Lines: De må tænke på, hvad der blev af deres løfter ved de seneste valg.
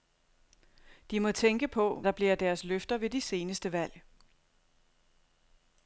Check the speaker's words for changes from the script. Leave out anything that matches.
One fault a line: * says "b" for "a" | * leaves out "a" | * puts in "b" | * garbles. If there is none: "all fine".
* leaves out "hvad"